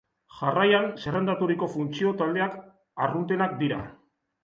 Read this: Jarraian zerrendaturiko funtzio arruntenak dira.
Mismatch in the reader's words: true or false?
true